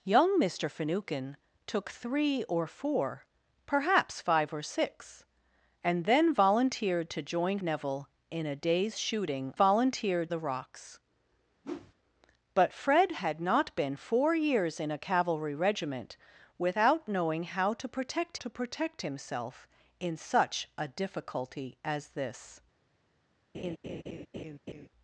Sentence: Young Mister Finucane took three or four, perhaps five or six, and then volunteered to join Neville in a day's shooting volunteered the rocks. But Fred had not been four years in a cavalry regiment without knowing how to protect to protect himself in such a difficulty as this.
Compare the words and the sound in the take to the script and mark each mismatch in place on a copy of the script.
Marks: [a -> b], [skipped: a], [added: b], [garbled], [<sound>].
Young Mister Finucane took three or four, perhaps five or six, and then volunteered to join Neville in a day's shooting volunteered the rocks. [whoosh] But Fred had not been four years in a cavalry regiment without knowing how to protect to protect himself in such a difficulty as this. [laugh]